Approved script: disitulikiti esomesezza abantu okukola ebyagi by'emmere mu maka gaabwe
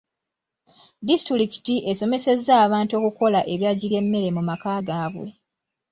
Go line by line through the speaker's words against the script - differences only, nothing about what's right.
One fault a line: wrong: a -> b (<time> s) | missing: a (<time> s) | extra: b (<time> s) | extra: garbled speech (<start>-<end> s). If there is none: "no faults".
no faults